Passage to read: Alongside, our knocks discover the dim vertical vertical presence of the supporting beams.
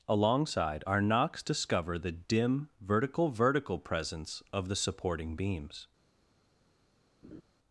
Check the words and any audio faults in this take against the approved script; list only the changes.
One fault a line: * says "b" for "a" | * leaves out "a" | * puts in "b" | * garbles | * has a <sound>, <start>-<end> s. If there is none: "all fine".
* has a laugh, 7.2-7.4 s